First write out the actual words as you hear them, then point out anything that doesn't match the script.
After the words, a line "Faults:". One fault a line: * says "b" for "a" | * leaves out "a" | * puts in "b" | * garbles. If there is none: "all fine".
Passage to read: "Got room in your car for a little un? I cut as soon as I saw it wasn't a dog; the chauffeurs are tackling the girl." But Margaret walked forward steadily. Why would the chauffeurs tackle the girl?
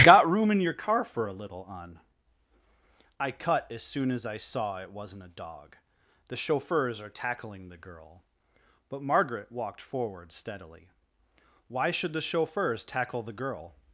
"Got room in your car for a little un? I cut as soon as I saw it wasn't a dog; the chauffeurs are tackling the girl." But Margaret walked forward steadily. Why should the chauffeurs tackle the girl?
Faults:
* says "should" for "would"